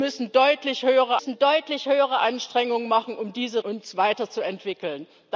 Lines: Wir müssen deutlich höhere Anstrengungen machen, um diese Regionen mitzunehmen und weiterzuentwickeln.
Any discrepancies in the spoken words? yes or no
yes